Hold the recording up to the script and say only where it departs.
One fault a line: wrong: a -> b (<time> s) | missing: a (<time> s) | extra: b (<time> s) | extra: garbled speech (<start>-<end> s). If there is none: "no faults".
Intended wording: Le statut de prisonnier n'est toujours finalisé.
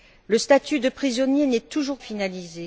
no faults